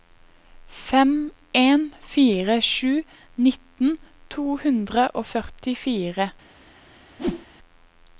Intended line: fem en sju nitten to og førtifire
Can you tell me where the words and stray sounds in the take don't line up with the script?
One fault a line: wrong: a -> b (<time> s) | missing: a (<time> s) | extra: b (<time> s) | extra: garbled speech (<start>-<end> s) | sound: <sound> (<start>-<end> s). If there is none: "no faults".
extra: fire (2.1 s)
extra: hundre (4.6 s)
sound: whoosh (7.2-7.5 s)